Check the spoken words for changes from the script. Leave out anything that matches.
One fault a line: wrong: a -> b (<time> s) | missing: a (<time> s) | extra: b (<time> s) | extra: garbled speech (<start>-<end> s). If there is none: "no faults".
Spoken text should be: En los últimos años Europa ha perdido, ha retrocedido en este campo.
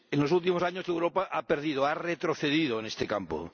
no faults